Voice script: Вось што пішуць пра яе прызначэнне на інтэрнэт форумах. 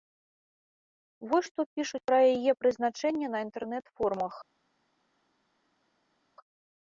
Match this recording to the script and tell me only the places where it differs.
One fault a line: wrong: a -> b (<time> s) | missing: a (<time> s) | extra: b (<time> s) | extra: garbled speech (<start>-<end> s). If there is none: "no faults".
no faults